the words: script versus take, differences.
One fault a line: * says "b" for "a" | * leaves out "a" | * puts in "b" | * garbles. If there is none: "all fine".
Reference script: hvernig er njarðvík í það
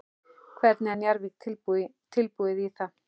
* puts in "tilbúið"